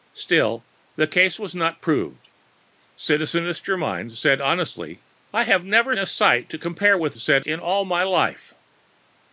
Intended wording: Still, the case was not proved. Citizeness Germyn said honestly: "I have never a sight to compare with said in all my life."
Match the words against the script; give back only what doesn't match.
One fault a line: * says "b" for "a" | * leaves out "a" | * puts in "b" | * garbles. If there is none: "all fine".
all fine